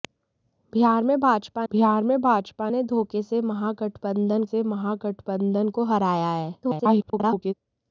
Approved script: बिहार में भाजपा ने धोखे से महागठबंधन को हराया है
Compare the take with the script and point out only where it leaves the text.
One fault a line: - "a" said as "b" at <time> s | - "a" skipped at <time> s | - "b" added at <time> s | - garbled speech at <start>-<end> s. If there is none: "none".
- "बिहार में भाजपा" added at 1.7 s
- "से महागठबंधन" added at 4.4 s
- garbled speech at 6.6-7.5 s